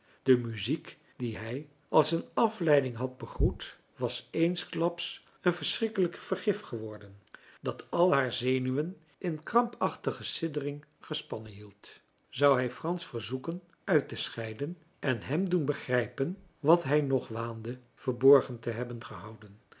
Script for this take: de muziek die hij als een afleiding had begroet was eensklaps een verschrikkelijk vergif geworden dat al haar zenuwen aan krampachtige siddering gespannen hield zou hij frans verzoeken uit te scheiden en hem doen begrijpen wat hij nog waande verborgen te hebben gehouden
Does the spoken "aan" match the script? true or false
false